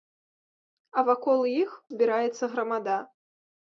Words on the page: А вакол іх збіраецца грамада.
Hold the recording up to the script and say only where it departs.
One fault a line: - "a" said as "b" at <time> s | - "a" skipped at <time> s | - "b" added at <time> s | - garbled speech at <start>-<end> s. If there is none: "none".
none